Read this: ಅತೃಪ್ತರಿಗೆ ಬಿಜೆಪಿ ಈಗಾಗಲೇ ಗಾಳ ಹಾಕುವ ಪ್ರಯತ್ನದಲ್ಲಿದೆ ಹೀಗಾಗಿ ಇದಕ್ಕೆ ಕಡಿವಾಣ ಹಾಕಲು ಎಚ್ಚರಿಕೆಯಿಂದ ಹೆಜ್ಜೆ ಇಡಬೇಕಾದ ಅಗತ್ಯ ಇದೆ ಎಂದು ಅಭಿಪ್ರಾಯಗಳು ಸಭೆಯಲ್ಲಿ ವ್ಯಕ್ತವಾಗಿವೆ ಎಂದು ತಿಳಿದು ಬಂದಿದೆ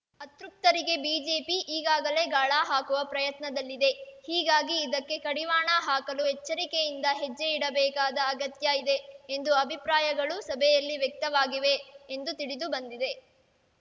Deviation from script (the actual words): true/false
false